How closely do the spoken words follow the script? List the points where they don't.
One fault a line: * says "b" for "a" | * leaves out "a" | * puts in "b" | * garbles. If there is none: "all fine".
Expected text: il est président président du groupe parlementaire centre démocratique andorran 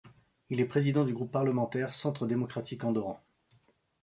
* leaves out "président"